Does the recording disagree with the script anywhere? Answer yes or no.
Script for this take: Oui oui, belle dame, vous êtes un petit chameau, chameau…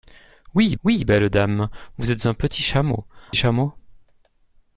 no